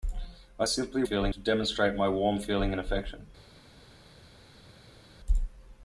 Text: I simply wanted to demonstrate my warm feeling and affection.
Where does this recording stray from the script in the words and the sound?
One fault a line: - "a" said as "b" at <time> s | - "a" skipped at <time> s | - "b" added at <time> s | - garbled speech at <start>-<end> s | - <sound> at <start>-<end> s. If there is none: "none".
- "wanted" said as "feeling" at 1.0 s